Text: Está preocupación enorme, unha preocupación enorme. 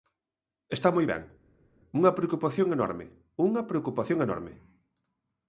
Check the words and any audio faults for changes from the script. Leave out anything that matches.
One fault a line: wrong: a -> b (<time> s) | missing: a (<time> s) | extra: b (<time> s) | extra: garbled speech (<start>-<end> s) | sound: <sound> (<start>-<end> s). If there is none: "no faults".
extra: moi ben unha (0.9 s)